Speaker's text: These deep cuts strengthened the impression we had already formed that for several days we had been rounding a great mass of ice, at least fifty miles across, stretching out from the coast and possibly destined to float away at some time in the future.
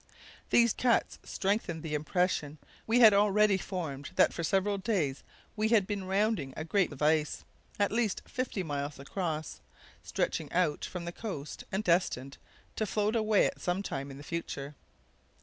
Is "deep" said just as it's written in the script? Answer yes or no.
no